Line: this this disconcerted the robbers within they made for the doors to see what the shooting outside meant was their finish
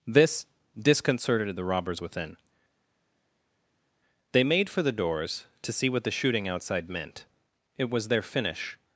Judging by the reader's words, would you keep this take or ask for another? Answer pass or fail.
fail